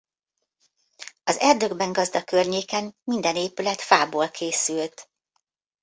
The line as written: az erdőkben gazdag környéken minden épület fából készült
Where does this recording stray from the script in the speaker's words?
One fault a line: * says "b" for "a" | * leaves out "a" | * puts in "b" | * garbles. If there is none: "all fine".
all fine